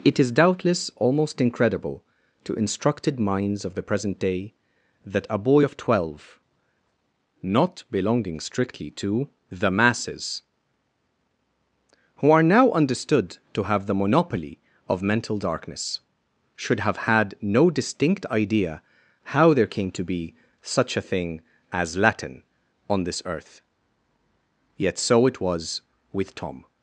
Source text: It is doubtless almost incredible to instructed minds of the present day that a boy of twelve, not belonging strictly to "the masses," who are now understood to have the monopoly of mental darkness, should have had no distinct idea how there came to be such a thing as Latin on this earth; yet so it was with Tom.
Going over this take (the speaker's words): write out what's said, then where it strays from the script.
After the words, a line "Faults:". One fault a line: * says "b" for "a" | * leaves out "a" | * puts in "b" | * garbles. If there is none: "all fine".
It is doubtless almost incredible to instructed minds of the present day that a boy of twelve, not belonging strictly to "the masses," who are now understood to have the monopoly of mental darkness, should have had no distinct idea how there came to be such a thing as Latin on this earth; yet so it was with Tom.
Faults:
all fine